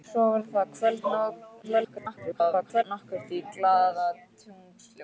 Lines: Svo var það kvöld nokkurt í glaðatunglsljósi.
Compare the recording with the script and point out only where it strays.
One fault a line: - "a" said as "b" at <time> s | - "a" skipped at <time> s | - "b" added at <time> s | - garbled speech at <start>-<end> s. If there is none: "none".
- garbled speech at 1.6-2.8 s